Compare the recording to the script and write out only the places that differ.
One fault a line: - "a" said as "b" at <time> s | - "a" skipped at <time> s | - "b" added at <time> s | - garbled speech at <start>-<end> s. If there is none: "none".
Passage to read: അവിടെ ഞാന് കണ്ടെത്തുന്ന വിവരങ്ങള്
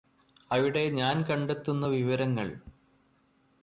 none